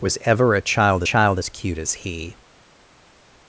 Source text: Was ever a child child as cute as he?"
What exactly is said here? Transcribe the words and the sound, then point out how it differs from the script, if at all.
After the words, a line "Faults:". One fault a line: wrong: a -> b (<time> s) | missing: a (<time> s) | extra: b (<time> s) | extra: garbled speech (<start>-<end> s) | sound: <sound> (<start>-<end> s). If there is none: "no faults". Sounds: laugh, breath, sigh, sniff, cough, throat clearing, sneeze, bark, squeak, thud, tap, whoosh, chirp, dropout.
Was ever a child child as cute as he?"
Faults:
no faults